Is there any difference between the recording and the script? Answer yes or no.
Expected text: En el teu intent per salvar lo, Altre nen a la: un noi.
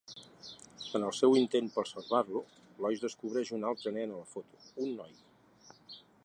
yes